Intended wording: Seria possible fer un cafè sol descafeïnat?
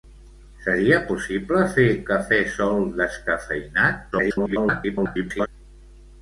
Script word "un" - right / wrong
wrong